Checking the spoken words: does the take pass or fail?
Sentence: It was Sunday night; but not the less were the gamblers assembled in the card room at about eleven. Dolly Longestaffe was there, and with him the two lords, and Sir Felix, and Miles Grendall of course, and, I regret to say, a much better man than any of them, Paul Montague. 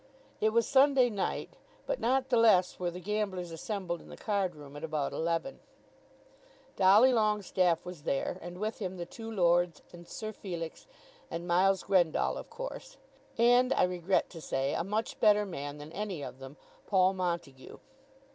pass